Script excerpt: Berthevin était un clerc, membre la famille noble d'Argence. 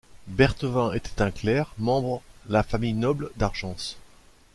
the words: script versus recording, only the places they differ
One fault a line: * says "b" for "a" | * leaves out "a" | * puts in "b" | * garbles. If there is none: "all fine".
all fine